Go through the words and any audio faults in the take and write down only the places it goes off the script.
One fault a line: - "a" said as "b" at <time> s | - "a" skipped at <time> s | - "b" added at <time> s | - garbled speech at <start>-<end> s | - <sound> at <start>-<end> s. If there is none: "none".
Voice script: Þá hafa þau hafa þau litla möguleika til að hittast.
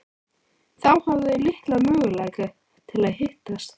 - "hafa þau" skipped at 1.4 s